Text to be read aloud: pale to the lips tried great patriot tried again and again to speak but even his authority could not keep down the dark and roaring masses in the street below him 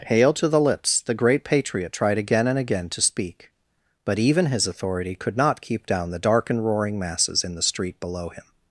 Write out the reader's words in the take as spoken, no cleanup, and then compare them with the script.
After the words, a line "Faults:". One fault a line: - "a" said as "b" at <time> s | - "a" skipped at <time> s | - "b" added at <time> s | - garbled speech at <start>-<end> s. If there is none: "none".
pale to the lips the great patriot tried again and again to speak but even his authority could not keep down the dark and roaring masses in the street below him
Faults:
- "tried" said as "the" at 1.0 s